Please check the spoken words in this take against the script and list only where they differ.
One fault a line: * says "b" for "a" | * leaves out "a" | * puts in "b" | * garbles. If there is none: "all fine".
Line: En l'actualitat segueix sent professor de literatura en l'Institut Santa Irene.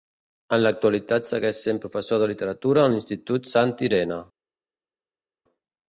all fine